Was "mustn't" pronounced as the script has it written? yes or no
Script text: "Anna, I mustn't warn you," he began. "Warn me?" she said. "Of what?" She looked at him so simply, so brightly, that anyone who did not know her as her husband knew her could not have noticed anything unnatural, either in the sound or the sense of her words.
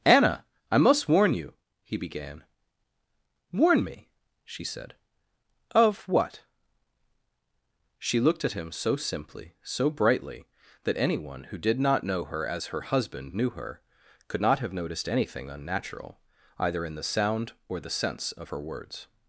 no